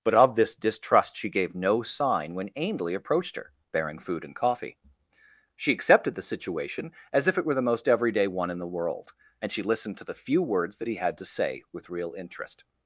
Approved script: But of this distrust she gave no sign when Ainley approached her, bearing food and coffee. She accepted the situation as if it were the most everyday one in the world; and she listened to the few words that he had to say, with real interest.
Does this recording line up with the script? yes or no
yes